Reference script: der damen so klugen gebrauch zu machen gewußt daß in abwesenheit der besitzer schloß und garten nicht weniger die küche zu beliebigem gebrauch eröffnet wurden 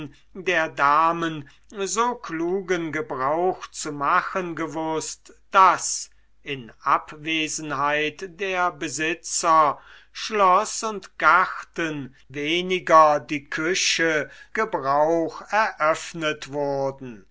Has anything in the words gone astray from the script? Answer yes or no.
yes